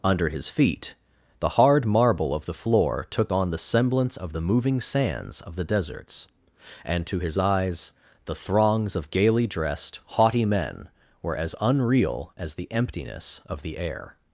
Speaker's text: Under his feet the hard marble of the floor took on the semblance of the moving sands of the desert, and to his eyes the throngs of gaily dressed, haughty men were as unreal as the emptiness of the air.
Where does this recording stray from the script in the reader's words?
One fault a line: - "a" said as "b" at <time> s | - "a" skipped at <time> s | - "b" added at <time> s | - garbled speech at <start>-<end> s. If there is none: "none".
- "desert" said as "deserts" at 5.6 s